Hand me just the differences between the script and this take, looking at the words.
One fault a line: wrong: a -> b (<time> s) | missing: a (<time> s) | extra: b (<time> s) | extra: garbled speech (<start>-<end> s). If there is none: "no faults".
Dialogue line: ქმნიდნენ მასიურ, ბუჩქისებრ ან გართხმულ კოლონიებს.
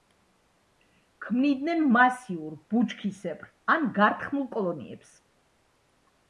no faults